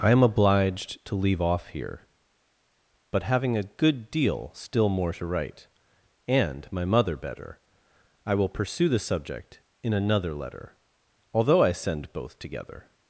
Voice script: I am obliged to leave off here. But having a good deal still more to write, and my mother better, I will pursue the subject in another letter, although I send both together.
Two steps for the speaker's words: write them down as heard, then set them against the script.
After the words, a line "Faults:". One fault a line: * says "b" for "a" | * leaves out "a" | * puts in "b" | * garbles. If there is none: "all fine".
I am obliged to leave off here. But having a good deal still more to write, and my mother better, I will pursue the subject in another letter, although I send both together.
Faults:
all fine